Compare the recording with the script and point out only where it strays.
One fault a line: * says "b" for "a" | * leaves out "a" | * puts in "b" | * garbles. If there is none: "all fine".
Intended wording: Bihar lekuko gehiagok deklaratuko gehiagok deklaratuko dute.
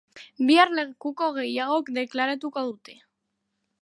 * leaves out "gehiagok deklaratuko"